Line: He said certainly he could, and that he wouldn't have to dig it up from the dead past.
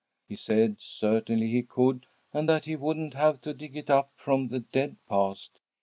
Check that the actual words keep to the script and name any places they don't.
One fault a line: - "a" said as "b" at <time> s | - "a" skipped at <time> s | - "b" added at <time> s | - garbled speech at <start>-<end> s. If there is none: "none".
none